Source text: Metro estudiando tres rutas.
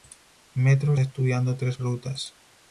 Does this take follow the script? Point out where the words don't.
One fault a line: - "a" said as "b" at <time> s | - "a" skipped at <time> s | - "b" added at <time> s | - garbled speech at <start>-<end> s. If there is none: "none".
none